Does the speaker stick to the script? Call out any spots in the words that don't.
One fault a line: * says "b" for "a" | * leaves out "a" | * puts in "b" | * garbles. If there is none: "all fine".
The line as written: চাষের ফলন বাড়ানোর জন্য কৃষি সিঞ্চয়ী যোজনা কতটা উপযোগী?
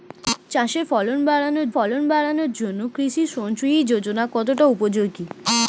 * puts in "ফলন বাড়ানোর"